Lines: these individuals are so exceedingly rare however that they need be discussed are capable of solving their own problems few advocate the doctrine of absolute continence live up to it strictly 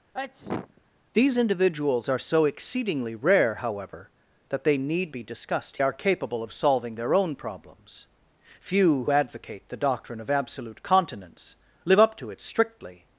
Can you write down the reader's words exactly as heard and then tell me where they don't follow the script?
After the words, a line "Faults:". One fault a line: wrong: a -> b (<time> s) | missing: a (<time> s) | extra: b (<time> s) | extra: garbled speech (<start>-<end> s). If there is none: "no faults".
these individuals are so exceedingly rare however that they need be discussed are capable of solving their own problems few advocate the doctrine of absolute continence live up to it strictly
Faults:
no faults